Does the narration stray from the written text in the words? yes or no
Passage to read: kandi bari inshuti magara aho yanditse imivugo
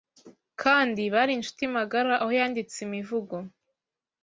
no